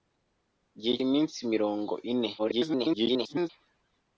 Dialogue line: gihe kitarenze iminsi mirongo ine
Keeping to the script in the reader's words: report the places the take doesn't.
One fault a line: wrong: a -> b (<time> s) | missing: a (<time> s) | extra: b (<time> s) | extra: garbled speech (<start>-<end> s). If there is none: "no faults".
missing: kitarenze (0.9 s)
extra: garbled speech (2.4-3.5 s)